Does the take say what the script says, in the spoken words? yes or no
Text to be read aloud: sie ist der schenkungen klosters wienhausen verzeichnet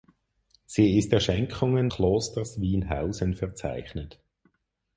yes